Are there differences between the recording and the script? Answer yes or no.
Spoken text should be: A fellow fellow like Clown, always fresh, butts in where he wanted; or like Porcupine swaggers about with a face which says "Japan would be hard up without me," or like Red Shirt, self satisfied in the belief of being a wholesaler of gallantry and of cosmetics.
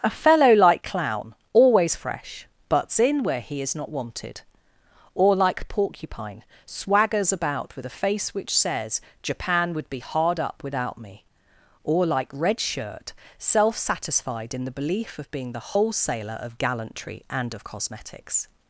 yes